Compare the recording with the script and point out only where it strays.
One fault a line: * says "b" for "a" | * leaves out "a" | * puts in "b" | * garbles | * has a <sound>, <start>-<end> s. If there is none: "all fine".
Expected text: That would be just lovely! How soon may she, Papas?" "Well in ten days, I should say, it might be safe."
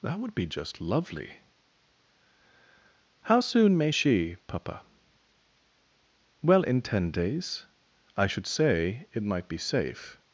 * says "Papa" for "Papas"